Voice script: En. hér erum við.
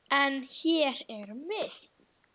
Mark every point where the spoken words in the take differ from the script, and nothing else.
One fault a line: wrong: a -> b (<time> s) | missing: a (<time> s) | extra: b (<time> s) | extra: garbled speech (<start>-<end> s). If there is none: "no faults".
no faults